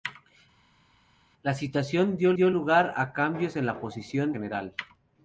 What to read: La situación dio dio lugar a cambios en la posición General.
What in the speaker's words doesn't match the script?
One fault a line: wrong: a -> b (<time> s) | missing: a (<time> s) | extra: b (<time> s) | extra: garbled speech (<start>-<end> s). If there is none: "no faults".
no faults